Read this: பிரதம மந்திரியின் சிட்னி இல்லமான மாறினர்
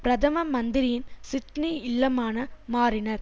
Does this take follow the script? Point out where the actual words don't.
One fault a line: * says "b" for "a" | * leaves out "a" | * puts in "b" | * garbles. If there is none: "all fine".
all fine